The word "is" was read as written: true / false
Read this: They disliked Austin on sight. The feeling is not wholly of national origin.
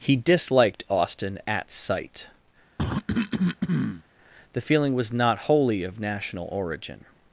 false